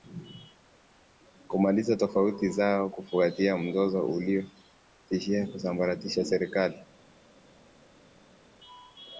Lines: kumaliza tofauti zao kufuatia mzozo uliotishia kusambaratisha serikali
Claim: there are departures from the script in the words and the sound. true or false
false